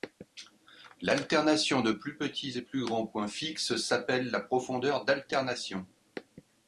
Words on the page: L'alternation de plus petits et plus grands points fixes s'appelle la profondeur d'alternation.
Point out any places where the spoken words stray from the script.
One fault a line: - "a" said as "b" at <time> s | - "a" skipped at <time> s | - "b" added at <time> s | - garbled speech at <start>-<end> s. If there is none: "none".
none